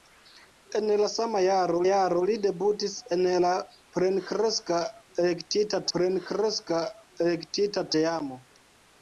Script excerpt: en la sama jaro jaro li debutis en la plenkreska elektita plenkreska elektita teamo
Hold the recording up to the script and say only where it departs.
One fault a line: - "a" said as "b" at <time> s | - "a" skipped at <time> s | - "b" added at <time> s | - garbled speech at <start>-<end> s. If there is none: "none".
none